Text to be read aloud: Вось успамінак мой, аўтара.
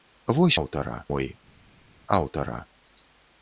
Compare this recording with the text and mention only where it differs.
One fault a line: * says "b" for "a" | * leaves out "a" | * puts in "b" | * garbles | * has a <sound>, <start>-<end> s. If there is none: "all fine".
* says "аўтара" for "успамінак"